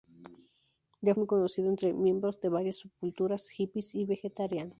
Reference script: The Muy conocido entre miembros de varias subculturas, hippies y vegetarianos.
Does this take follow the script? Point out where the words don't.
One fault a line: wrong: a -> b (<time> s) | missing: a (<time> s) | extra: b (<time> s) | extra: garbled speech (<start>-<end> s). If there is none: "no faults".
no faults